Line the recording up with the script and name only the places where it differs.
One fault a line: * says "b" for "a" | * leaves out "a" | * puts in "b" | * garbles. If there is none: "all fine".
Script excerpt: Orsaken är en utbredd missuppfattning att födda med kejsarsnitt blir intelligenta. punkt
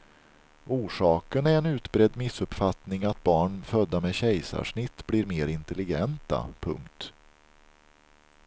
* puts in "barn"
* puts in "mer"